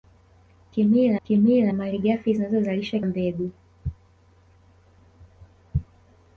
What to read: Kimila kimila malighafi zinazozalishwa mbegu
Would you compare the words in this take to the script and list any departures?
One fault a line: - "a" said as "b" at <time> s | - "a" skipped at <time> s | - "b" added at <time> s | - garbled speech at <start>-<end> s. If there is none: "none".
none